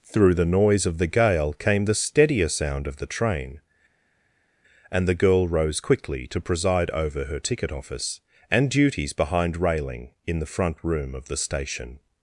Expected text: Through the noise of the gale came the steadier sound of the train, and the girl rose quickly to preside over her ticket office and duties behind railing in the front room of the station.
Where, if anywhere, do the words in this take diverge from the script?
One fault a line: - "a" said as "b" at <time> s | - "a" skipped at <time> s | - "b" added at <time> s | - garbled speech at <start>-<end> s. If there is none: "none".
none